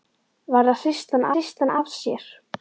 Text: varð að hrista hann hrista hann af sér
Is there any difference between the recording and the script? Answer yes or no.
no